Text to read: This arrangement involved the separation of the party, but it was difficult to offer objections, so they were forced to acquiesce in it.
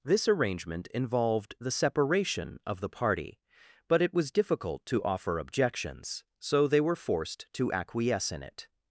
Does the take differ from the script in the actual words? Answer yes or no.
no